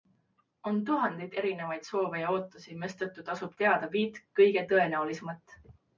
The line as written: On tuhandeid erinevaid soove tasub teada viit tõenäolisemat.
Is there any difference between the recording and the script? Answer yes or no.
yes